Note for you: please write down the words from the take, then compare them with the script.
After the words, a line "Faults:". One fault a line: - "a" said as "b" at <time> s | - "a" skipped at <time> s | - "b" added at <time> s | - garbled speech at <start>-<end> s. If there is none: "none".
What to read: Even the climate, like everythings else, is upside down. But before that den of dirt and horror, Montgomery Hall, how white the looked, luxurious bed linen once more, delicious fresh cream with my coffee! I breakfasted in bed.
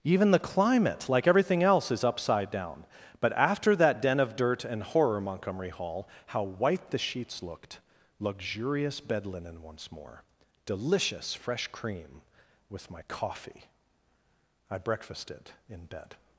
Even the climate, like everything else, is upside down. But after that den of dirt and horror, Montgomery Hall, how white the sheets looked, luxurious bed linen once more, delicious fresh cream with my coffee! I breakfasted in bed.
Faults:
- "everythings" said as "everything" at 1.3 s
- "before" said as "after" at 3.3 s
- "sheets" added at 7.0 s